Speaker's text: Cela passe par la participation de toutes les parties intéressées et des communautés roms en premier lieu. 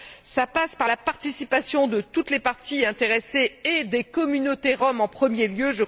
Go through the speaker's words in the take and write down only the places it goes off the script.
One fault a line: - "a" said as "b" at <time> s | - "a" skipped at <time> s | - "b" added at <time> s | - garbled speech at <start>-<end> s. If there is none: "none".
none